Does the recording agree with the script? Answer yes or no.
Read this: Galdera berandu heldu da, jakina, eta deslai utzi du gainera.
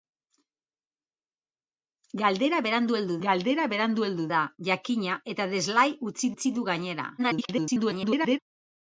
no